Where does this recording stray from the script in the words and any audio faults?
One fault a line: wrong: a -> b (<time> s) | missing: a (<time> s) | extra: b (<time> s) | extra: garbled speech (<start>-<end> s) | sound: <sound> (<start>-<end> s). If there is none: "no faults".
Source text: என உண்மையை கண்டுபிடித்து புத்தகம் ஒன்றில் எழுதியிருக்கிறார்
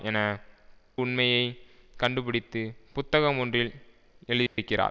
sound: dropout (4.5-4.6 s)